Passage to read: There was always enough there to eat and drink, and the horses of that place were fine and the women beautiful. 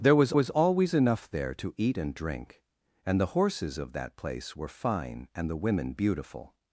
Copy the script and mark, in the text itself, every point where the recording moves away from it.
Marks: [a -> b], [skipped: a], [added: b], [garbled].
There was [added: was] always enough there to eat and drink, and the horses of that place were fine and the women beautiful.